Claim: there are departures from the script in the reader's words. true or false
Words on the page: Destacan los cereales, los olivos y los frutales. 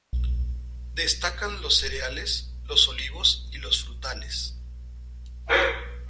false